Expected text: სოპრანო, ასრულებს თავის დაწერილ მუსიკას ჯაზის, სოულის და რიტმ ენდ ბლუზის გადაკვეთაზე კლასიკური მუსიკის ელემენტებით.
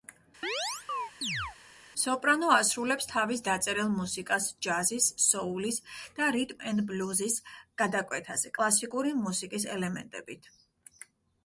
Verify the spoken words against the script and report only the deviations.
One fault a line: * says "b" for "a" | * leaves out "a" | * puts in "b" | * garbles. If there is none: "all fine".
all fine